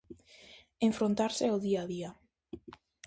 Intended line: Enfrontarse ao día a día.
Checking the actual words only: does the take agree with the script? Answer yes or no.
yes